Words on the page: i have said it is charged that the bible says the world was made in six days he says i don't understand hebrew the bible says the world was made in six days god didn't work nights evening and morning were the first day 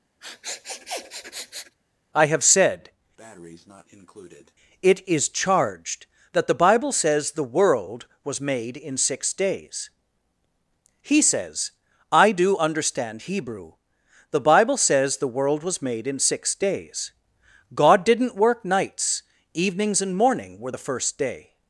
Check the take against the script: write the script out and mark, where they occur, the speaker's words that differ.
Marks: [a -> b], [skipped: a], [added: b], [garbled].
i have said it is charged that the bible says the world was made in six days he says i [don't -> do] understand hebrew the bible says the world was made in six days god didn't work nights [evening -> evenings] and morning were the first day